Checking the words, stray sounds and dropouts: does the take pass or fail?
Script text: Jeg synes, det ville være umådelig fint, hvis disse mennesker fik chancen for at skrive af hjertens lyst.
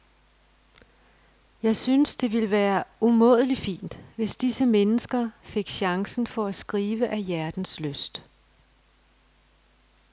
pass